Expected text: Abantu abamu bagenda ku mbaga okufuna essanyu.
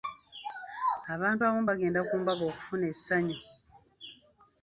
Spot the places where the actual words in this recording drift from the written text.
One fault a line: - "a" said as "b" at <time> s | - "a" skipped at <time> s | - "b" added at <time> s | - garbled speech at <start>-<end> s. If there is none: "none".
none